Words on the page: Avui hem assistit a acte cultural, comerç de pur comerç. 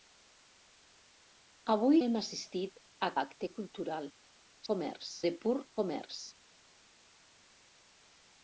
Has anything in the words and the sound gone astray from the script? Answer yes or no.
no